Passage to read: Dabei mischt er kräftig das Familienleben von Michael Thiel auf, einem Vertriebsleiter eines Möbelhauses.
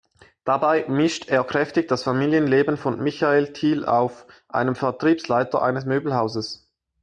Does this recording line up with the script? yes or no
yes